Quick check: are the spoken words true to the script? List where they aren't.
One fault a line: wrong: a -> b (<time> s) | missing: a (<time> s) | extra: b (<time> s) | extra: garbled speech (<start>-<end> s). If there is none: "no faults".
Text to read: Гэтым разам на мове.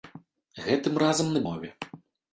no faults